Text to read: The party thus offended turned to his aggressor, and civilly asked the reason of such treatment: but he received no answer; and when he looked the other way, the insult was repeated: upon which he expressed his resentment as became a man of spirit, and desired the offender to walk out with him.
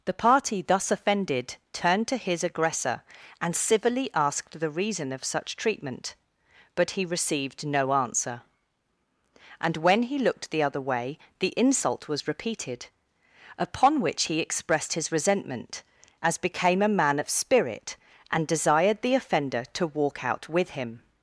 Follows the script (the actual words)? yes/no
yes